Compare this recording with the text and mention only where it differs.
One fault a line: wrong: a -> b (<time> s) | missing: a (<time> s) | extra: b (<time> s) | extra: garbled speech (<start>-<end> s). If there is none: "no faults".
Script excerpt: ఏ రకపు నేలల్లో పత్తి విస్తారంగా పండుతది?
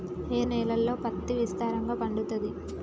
missing: రకపు (0.4 s)